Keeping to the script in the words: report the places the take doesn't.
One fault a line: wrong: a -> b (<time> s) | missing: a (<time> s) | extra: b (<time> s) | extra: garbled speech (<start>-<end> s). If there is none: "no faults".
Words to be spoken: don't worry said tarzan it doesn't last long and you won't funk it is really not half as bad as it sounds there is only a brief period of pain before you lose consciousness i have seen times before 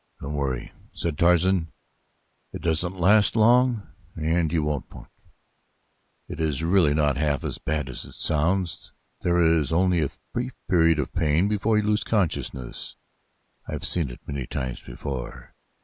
extra: it many (14.1 s)